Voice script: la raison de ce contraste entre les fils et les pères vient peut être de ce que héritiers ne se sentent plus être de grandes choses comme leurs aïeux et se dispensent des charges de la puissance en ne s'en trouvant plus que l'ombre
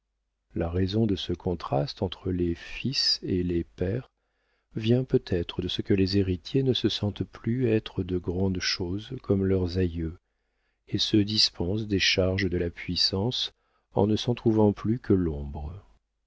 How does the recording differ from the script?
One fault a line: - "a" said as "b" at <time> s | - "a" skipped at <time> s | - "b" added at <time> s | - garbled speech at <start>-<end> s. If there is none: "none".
- "les" added at 5.9 s